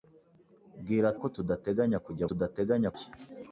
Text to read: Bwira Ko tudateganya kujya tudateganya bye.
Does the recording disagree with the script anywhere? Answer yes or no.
no